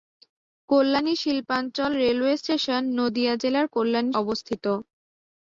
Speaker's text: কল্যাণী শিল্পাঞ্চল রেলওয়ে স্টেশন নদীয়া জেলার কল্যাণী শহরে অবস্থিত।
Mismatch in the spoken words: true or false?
true